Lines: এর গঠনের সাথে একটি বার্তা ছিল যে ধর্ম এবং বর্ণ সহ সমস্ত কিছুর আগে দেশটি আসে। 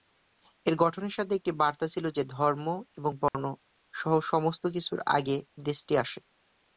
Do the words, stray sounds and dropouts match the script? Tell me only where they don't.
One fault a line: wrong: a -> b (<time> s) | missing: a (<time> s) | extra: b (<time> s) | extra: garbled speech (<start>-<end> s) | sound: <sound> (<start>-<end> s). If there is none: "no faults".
sound: dropout (3.3-3.3 s)